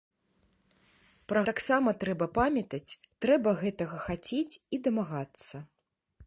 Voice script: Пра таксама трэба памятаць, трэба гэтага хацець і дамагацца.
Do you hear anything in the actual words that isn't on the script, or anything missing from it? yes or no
no